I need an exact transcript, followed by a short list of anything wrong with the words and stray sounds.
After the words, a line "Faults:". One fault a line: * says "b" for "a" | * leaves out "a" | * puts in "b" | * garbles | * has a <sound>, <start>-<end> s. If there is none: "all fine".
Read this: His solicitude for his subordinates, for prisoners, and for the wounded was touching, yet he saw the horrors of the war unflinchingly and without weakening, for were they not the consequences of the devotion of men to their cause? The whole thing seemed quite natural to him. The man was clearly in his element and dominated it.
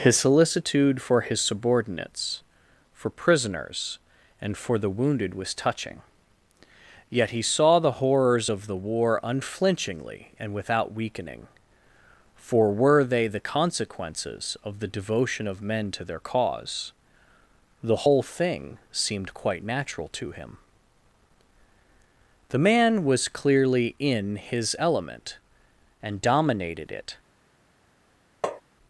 His solicitude for his subordinates, for prisoners, and for the wounded was touching, yet he saw the horrors of the war unflinchingly and without weakening, for were they the consequences of the devotion of men to their cause? The whole thing seemed quite natural to him. The man was clearly in his element and dominated it.
Faults:
* leaves out "not"
* has a tap, 28.4-28.6 s